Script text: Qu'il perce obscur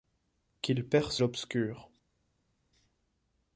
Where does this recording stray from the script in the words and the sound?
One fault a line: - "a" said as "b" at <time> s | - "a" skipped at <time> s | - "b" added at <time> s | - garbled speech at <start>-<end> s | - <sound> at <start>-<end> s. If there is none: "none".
none